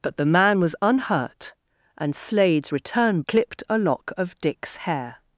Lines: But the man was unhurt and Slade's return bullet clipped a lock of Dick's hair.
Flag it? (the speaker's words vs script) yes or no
yes